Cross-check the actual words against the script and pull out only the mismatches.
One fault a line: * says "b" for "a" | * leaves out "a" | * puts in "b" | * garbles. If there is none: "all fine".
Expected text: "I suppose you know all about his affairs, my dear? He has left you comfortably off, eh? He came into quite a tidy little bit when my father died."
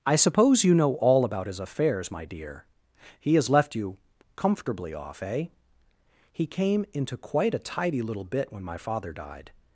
all fine